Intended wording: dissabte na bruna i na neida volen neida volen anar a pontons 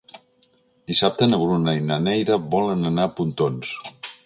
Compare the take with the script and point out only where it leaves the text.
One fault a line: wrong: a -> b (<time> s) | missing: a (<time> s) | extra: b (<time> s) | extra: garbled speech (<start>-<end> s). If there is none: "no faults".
missing: neida volen (2.9 s)